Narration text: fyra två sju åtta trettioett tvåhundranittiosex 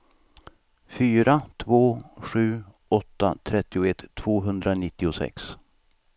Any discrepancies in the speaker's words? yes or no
no